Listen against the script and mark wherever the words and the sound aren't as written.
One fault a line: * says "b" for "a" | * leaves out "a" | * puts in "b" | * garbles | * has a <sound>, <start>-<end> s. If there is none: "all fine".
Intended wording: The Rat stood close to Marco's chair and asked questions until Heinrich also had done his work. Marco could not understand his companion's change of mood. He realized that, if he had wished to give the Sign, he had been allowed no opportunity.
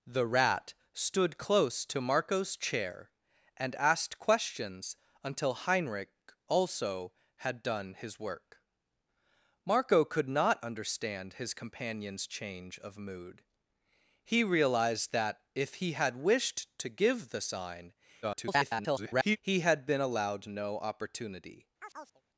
* garbles
* has a chirp, 21.8-22.2 s